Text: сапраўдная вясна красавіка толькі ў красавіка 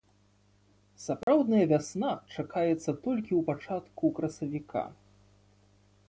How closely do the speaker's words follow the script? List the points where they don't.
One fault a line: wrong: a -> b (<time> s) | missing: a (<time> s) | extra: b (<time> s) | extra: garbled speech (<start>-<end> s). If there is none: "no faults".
wrong: красавіка -> чакаецца (2.4 s)
extra: пачатку (3.5 s)